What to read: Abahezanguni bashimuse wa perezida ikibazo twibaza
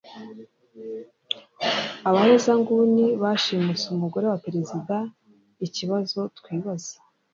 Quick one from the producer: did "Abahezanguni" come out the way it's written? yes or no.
yes